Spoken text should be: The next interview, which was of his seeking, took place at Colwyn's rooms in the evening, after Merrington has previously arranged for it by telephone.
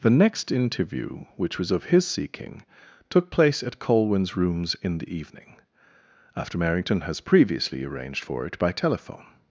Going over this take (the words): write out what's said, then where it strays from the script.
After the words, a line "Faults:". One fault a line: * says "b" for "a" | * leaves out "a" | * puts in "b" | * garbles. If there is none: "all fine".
The next interview, which was of his seeking, took place at Colwyn's rooms in the evening, after Merrington has previously arranged for it by telephone.
Faults:
all fine